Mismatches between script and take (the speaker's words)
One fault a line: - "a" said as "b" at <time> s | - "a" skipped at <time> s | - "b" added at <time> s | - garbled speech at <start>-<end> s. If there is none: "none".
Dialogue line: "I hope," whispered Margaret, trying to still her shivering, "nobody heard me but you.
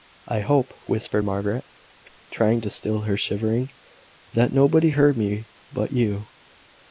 - "that" added at 4.3 s